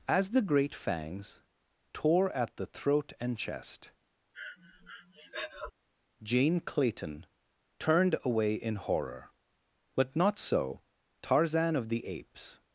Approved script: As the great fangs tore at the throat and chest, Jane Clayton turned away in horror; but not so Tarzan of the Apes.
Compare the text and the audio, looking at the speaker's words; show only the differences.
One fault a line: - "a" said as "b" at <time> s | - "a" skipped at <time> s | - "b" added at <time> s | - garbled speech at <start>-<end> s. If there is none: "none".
none